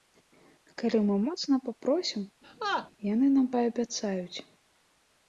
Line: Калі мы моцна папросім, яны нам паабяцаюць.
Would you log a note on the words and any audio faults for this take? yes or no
yes